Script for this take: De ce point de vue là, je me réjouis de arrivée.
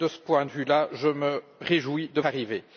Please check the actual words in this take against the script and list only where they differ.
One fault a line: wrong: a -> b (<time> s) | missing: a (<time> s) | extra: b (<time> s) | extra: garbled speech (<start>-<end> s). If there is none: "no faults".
no faults